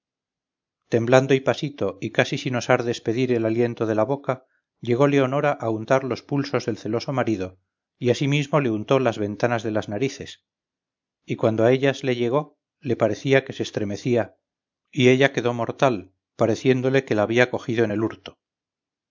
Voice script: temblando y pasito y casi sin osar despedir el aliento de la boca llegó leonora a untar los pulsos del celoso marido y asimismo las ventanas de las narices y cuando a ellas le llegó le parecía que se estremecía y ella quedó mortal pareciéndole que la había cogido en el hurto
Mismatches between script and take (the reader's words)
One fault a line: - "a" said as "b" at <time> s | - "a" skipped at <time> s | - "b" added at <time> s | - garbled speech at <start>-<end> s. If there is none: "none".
- "le untó" added at 8.6 s